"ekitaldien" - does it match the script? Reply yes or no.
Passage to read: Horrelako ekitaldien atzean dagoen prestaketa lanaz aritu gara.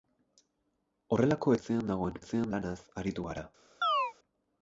no